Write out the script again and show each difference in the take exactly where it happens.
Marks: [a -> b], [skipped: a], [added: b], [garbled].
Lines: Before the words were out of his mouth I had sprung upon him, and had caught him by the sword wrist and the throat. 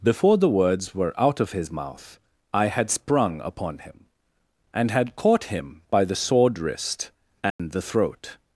Before the words were out of his mouth I had sprung upon him, and had caught him by the sword wrist and the throat.